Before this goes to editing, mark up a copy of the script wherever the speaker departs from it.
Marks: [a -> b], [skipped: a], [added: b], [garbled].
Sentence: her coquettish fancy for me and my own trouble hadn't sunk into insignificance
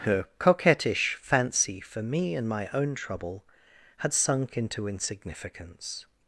her coquettish fancy for me and my own trouble [hadn't -> had] sunk into insignificance